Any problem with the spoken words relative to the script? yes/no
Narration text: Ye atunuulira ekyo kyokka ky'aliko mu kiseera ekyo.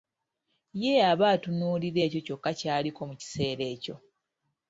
yes